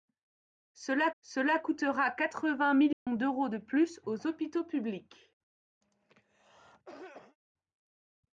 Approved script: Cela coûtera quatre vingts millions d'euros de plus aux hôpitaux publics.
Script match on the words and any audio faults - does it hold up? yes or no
no